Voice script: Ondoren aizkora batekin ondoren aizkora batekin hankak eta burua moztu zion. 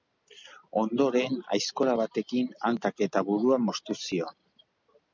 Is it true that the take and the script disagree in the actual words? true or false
true